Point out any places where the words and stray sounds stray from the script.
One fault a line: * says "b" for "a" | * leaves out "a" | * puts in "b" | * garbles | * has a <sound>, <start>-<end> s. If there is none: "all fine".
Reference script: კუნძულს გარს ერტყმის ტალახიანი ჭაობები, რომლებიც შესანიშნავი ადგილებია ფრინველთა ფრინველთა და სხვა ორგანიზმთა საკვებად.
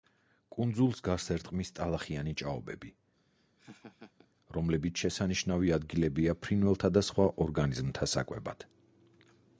* has a laugh, 3.2-4.3 s
* leaves out "ფრინველთა"